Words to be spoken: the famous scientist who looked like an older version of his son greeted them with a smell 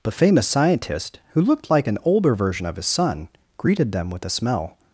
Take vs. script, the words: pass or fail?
pass